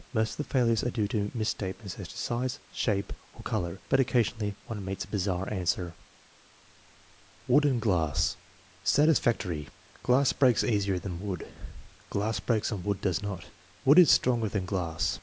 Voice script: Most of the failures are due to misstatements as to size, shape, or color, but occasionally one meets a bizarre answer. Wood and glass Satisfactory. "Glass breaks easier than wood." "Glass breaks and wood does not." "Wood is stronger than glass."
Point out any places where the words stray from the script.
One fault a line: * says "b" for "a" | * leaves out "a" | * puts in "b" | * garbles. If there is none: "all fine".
all fine